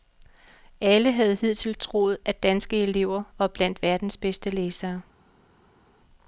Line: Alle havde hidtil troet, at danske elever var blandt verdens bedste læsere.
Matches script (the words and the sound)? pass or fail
pass